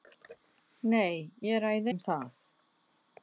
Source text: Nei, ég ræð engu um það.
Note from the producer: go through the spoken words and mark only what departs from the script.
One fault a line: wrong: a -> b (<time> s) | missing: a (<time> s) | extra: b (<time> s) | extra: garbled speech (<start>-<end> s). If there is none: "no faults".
missing: engu (1.9 s)